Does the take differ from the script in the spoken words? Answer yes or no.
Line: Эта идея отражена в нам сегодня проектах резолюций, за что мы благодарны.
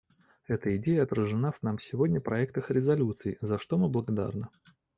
no